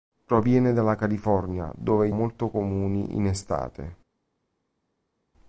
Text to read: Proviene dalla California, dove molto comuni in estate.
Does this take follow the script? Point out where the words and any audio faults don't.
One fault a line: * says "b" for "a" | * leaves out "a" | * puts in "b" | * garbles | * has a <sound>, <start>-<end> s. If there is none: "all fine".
all fine